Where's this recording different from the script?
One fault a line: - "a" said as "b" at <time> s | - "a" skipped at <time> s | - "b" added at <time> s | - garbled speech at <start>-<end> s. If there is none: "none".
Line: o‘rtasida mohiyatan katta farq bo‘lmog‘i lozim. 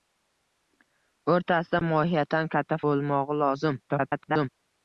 - "farq" skipped at 2.8 s
- garbled speech at 3.9-4.5 s